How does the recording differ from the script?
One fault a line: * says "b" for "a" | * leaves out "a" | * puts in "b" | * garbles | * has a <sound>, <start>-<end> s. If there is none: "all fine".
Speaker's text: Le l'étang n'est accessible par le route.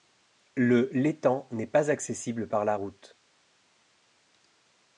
* puts in "pas"
* says "la" for "le"